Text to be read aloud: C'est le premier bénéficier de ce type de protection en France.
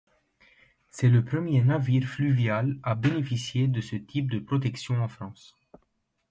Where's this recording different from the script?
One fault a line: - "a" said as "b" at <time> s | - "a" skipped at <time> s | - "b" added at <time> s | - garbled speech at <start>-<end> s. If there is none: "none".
- "navire fluvial à" added at 1.6 s